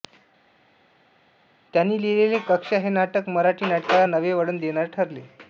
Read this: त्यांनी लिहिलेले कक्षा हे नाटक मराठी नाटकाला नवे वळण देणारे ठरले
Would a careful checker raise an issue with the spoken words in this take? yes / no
no